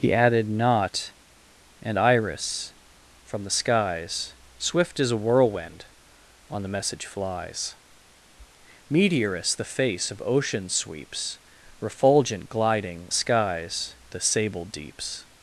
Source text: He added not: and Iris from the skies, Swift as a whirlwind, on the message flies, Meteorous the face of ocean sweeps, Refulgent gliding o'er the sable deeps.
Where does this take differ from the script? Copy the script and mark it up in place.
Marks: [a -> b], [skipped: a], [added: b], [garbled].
He added not: and Iris from the skies, Swift as a whirlwind, on the message flies, Meteorous the face of ocean sweeps, Refulgent gliding [o'er -> skies] the sable deeps.